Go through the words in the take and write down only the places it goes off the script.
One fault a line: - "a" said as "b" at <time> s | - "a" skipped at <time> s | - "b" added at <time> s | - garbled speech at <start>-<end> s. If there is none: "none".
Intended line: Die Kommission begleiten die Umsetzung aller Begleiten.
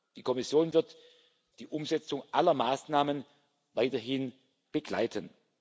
- "begleiten" said as "wird" at 0.7 s
- "Maßnahmen weiterhin" added at 2.5 s